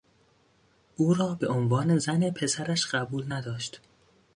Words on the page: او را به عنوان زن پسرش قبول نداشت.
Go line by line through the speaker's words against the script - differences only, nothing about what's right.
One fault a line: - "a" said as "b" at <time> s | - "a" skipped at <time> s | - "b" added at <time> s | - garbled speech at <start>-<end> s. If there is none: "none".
none